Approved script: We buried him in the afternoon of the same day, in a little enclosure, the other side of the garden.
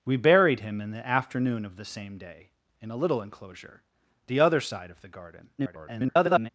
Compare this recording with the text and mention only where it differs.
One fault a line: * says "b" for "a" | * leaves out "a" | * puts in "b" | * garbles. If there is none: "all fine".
* garbles